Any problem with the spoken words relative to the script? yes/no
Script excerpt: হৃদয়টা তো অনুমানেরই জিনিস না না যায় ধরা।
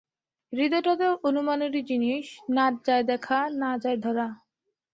yes